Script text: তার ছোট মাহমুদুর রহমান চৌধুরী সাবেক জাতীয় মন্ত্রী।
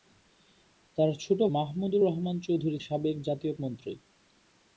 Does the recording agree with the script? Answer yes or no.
yes